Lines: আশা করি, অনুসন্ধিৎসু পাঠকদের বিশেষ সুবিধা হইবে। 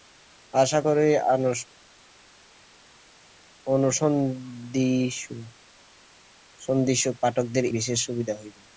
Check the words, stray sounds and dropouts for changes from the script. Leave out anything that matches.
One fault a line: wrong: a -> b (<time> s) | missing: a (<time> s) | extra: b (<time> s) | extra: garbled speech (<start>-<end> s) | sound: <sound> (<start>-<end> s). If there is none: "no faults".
no faults